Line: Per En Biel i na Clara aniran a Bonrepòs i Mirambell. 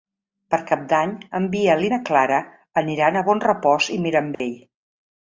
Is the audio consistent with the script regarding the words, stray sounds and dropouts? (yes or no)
no